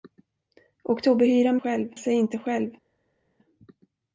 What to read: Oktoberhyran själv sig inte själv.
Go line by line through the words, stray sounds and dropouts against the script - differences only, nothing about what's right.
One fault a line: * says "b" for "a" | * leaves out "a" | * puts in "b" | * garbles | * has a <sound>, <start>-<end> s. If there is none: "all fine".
all fine